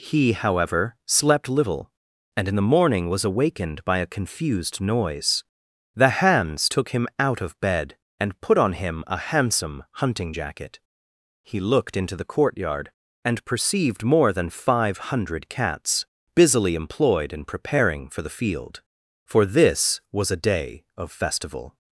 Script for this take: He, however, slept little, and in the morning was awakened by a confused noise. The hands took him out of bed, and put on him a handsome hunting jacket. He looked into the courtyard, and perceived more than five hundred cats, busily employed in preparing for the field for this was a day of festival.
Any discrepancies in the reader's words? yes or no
no